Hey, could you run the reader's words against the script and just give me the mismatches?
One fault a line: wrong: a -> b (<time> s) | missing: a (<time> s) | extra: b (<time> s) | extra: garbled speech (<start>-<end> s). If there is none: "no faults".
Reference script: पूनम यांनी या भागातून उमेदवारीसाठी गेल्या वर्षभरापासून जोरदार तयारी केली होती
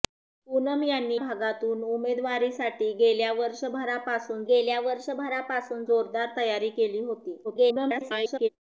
missing: या (1.2 s)
extra: गेल्या वर्षभरापासून (4.5 s)
extra: garbled speech (7.4-8.5 s)